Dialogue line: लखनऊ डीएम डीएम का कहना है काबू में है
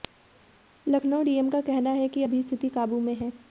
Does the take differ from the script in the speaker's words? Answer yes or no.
yes